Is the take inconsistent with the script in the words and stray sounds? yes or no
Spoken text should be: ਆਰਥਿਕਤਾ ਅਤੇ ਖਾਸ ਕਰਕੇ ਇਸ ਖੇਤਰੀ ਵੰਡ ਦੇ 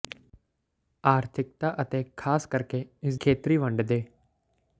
no